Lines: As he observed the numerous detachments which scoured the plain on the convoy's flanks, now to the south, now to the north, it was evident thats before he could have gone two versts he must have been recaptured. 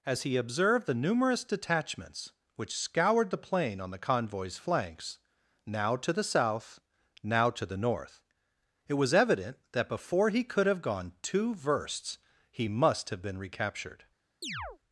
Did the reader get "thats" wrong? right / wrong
wrong